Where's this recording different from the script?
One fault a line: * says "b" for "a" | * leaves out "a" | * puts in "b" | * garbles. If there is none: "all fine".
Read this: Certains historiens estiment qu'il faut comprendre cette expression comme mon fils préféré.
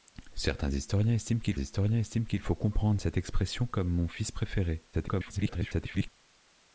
* puts in "historiens estiment qu'il"
* garbles